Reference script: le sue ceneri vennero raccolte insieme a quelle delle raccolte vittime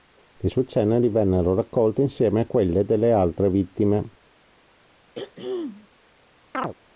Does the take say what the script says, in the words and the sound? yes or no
no